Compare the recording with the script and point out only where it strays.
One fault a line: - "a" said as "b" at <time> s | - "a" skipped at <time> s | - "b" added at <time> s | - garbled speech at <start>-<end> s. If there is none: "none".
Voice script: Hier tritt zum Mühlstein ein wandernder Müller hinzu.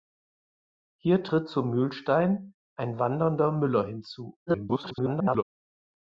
- garbled speech at 4.5-5.4 s